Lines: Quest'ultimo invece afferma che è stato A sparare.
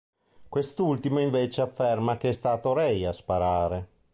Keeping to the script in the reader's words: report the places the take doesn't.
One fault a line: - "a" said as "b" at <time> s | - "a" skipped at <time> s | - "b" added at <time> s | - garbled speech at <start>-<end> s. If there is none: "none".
- "Ray" added at 2.7 s